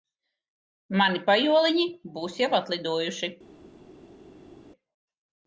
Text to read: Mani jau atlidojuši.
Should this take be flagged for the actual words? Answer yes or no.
yes